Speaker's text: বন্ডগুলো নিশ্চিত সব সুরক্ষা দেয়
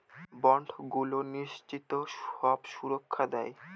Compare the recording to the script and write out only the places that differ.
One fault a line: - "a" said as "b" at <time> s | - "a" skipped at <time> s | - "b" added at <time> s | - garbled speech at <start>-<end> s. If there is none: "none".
none